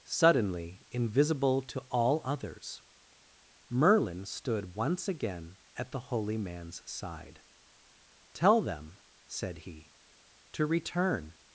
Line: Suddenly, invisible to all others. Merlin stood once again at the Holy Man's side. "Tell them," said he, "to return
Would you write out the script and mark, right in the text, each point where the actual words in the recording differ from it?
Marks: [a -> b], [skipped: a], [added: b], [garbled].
Suddenly, invisible to all others. Merlin stood once again at the Holy Man's side. "Tell them," said he, "to return